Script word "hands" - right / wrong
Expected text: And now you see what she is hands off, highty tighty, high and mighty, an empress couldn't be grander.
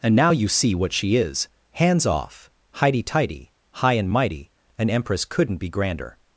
right